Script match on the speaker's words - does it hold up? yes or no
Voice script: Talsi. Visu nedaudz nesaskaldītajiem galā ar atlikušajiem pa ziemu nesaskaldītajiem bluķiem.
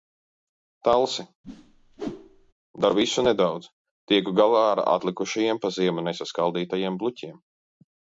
no